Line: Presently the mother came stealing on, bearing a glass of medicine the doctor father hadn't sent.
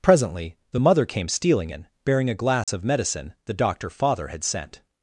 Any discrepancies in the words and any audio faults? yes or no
yes